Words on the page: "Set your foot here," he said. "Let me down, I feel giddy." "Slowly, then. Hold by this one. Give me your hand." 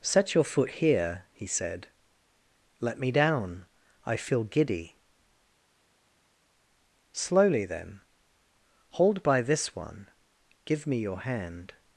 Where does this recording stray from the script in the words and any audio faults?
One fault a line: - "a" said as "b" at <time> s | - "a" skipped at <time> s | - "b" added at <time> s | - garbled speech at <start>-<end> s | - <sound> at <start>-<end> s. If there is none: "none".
none